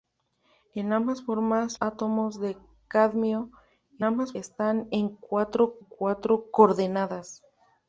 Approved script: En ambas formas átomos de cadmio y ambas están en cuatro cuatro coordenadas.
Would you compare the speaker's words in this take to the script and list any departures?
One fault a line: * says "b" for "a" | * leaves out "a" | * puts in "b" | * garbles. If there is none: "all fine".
all fine